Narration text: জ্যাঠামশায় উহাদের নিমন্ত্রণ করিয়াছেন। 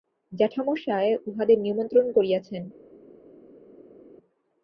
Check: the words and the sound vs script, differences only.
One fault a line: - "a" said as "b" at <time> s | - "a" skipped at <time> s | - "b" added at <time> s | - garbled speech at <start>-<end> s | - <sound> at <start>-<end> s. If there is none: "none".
none